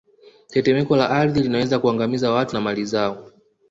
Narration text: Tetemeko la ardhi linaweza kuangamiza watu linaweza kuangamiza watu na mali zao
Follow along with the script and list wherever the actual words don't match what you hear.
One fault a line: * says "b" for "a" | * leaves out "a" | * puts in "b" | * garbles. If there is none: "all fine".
* leaves out "linaweza kuangamiza watu"